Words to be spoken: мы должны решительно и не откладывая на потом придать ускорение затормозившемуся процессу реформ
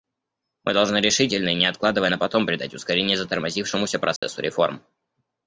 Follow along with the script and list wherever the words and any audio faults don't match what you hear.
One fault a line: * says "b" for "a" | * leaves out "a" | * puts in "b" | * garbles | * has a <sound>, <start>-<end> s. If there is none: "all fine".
* has a dropout, 4.2-4.2 s